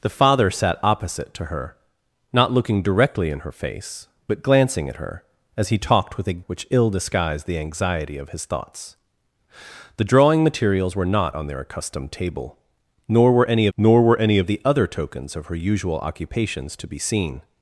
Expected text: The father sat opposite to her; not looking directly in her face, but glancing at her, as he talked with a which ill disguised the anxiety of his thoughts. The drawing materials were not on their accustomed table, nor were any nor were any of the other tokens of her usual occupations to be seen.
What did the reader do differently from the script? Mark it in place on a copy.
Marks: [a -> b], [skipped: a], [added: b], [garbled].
The father sat opposite to her; not looking directly in her face, but glancing at her, as he talked with a which ill disguised the anxiety of his thoughts. The drawing materials were not on their accustomed table, nor were any nor were any of the other tokens of her usual occupations to be seen.